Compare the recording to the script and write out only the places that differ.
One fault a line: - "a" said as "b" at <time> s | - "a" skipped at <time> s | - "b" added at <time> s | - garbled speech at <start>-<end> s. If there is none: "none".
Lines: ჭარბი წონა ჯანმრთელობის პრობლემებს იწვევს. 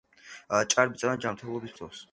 - "პრობლემებს" skipped at 1.8 s